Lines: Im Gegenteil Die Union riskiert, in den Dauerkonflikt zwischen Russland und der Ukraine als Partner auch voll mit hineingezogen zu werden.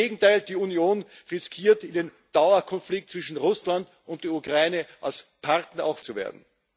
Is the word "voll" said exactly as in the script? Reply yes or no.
no